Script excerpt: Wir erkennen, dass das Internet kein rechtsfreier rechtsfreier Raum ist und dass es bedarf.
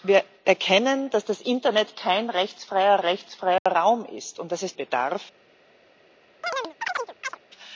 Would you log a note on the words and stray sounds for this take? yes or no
yes